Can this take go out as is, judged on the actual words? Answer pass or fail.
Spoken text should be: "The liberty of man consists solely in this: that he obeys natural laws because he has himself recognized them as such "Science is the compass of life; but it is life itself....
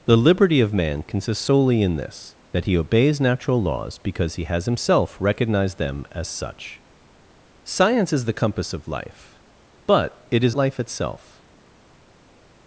pass